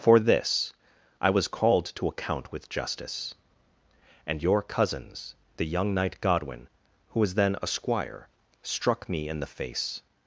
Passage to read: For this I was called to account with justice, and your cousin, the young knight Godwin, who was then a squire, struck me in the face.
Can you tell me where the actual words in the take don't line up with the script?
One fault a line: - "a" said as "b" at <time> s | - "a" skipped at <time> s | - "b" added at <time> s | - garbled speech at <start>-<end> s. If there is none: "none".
- "cousin" said as "cousins" at 4.6 s